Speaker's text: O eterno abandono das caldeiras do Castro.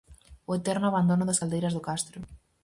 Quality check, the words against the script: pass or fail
pass